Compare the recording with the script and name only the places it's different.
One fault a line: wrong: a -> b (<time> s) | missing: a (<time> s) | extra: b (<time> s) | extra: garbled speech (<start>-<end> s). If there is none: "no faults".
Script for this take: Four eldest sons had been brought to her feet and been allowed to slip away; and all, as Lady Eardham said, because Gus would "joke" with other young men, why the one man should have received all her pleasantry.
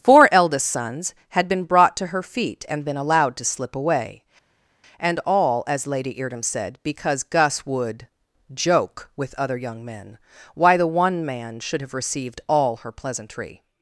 no faults